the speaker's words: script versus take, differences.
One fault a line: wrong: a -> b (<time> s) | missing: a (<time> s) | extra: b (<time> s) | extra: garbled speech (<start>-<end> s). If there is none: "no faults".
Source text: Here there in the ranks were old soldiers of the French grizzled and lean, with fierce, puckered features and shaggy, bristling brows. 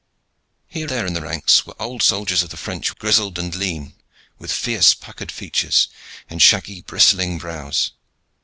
no faults